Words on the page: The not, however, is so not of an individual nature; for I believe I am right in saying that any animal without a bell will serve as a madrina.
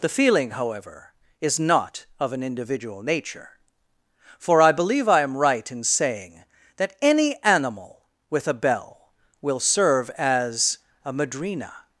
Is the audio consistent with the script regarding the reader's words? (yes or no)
no